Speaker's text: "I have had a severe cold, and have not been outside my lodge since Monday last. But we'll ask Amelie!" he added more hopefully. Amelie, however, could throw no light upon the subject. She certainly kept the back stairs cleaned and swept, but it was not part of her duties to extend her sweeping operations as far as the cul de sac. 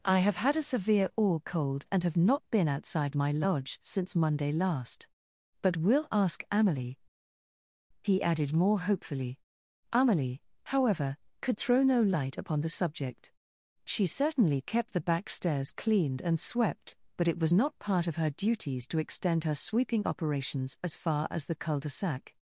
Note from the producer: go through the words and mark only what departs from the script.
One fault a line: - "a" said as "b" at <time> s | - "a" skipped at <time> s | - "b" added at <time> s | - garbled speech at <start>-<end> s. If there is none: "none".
- "or" added at 1.1 s